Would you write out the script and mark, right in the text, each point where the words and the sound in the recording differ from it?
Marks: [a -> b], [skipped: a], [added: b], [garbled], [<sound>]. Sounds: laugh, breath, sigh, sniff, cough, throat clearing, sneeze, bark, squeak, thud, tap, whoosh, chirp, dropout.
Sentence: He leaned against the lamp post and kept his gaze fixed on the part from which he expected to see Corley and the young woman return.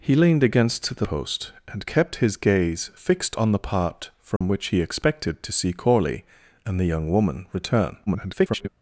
He leaned against the [skipped: lamp] post and kept his gaze fixed on the part from [dropout] which he expected to see Corley and the young woman return. [garbled]